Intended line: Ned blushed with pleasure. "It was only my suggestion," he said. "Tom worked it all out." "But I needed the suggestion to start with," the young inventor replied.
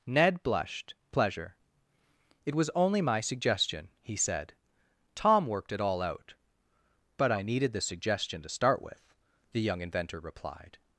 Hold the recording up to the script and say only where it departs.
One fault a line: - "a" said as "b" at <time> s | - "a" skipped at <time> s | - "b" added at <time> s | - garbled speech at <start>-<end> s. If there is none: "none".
- "with" skipped at 0.9 s